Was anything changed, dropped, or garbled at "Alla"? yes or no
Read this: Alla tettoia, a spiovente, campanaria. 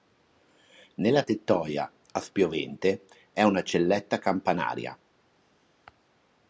yes